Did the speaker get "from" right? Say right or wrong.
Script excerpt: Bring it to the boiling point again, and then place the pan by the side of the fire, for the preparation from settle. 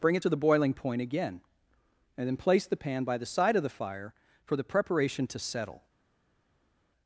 wrong